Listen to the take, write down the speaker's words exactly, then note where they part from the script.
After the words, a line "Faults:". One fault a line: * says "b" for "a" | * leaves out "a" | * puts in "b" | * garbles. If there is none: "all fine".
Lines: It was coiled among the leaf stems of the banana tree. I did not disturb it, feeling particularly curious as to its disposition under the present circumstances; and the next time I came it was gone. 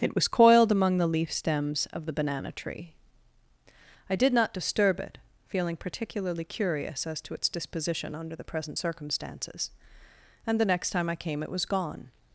It was coiled among the leaf stems of the banana tree. I did not disturb it, feeling particularly curious as to its disposition under the present circumstances; and the next time I came it was gone.
Faults:
all fine